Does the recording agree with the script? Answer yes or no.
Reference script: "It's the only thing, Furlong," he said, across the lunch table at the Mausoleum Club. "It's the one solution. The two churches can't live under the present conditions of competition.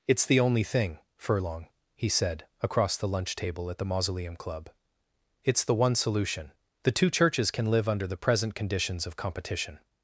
no